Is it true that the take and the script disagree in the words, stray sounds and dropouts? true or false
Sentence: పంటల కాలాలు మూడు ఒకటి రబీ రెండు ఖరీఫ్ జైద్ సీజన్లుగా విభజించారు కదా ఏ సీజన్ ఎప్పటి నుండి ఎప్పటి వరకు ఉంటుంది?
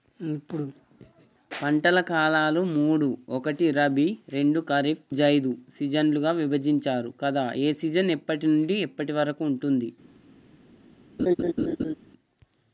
true